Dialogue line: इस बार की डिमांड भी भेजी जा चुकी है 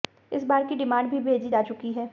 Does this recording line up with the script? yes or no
yes